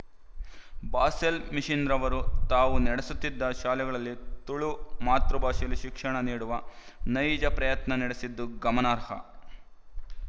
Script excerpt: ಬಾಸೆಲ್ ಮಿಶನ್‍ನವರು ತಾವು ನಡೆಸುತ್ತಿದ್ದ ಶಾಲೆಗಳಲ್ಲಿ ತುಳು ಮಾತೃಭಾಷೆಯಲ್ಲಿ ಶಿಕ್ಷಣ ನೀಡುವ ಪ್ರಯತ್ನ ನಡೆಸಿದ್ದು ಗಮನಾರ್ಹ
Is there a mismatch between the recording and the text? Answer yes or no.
yes